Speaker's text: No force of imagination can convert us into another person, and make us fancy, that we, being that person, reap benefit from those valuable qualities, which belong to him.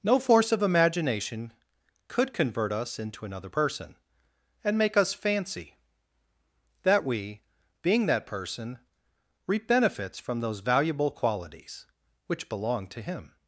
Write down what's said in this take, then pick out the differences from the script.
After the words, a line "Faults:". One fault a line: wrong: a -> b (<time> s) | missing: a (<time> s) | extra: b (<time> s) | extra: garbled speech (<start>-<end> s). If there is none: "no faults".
No force of imagination could convert us into another person, and make us fancy, that we, being that person, reap benefits from those valuable qualities, which belong to him.
Faults:
wrong: can -> could (2.1 s)
wrong: benefit -> benefits (9.7 s)